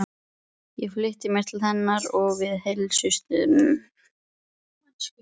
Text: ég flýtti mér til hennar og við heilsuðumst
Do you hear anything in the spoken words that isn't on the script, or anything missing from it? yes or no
no